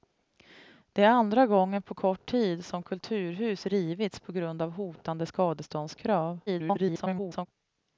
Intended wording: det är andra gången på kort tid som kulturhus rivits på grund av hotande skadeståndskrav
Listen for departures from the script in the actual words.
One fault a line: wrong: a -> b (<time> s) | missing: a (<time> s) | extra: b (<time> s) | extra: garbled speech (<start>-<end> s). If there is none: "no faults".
extra: garbled speech (6.5-7.5 s)